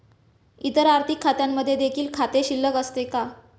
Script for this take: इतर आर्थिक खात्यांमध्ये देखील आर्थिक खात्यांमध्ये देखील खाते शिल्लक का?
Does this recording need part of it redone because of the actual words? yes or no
yes